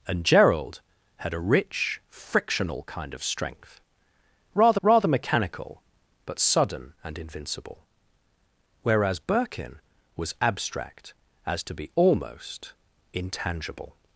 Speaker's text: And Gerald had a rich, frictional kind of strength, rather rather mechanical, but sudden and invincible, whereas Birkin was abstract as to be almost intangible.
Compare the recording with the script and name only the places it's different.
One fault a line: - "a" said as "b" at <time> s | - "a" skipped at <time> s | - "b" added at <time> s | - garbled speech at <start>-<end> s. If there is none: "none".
none